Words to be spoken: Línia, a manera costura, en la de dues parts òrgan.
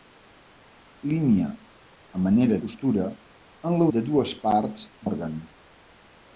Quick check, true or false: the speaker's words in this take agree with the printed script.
true